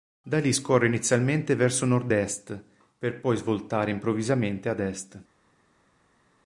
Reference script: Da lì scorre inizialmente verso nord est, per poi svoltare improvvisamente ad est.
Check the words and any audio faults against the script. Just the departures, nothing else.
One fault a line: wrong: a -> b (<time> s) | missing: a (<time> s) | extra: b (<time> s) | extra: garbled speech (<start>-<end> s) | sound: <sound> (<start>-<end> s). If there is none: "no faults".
no faults